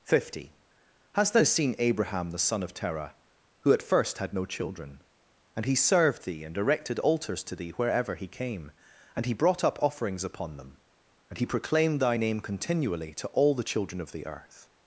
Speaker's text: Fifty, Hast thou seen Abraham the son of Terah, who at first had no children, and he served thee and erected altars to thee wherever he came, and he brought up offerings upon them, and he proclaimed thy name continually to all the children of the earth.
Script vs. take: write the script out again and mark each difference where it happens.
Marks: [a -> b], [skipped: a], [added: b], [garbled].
Fifty, Hast thou seen Abraham the son of Terah, who at first had no children, and he served thee and erected altars to thee wherever he came, and he brought up offerings upon them, and he proclaimed thy name continually to all the children of the earth.